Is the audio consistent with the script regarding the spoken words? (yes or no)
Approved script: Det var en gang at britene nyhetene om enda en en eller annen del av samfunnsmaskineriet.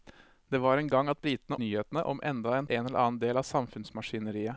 yes